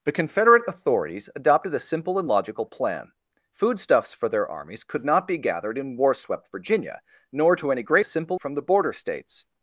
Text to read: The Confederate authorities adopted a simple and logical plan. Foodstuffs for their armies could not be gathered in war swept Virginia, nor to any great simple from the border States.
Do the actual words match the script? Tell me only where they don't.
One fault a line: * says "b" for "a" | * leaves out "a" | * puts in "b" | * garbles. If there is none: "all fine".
all fine